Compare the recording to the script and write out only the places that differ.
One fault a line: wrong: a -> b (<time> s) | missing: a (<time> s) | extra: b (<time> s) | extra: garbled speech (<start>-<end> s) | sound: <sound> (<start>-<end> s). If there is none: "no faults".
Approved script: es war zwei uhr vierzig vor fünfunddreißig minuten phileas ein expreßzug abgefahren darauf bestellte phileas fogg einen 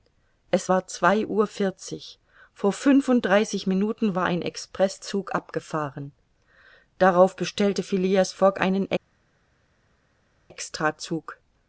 wrong: phileas -> war (4.1 s)